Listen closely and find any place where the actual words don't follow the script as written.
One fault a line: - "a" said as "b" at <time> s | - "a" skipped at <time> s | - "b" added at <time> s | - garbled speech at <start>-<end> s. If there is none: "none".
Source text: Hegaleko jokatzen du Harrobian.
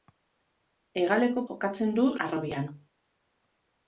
none